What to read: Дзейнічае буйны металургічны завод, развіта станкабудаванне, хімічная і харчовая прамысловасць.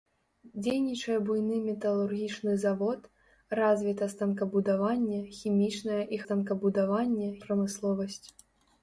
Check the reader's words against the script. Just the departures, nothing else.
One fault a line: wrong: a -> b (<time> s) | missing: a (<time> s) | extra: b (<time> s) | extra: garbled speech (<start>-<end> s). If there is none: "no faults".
wrong: харчовая -> станкабудаванне (6.2 s)